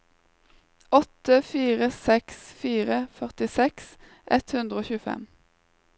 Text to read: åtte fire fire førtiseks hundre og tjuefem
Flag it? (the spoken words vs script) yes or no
yes